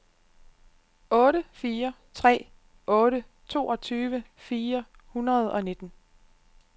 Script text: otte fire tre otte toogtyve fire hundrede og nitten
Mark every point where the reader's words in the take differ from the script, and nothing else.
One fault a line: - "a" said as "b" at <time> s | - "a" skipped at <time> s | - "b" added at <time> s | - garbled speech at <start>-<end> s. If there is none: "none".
none